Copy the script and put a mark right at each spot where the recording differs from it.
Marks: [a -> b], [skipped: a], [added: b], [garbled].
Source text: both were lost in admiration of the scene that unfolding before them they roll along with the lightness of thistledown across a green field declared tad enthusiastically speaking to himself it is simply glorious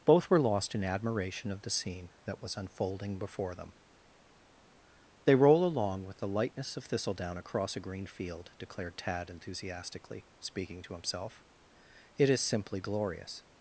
both were lost in admiration of the scene that [added: was] unfolding before them they roll along with the lightness of thistledown across a green field declared tad enthusiastically speaking to himself it is simply glorious